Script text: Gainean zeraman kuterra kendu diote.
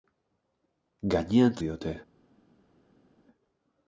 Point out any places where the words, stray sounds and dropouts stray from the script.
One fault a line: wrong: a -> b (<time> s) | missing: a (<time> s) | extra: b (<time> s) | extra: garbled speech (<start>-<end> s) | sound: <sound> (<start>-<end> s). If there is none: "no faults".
missing: zeraman kuterra kendu (1.6 s)